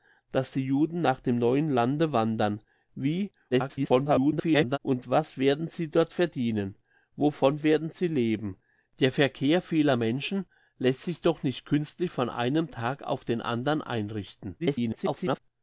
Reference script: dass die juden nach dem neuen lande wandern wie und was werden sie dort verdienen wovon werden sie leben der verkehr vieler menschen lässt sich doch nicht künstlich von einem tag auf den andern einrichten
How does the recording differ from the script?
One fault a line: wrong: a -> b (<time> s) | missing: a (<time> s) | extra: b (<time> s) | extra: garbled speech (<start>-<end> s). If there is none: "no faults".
extra: garbled speech (3.5-4.8 s)
extra: garbled speech (14.6-15.4 s)